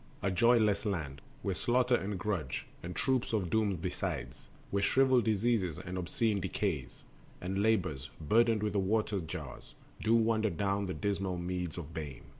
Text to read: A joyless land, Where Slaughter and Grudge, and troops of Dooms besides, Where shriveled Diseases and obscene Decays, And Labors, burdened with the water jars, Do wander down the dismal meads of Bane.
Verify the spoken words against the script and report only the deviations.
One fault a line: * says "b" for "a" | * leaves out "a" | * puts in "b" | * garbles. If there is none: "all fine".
all fine